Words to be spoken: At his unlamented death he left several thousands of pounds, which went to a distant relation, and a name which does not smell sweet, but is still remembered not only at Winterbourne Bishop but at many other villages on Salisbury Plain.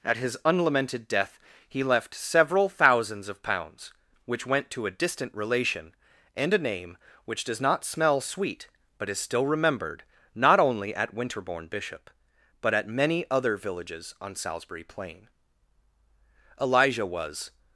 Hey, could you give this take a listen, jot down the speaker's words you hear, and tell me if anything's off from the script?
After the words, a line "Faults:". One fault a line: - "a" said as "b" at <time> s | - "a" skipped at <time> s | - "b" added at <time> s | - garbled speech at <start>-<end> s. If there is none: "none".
At his unlamented death he left several thousands of pounds, which went to a distant relation, and a name which does not smell sweet, but is still remembered not only at Winterbourne Bishop but at many other villages on Salisbury Plain. Elijah was
Faults:
- "Elijah was" added at 16.6 s